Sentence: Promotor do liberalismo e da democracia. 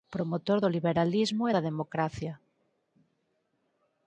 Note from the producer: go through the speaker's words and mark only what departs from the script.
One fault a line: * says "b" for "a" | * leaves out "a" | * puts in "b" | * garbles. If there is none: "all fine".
all fine